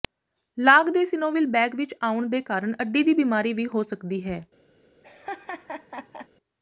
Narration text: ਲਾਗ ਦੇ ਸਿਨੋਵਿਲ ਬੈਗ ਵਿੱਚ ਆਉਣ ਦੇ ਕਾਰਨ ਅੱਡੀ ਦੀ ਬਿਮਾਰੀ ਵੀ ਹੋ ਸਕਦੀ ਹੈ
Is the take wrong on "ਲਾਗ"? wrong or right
right